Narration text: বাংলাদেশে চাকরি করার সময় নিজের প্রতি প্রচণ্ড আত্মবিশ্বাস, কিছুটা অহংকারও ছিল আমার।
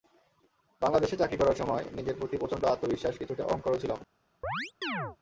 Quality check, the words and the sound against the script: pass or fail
fail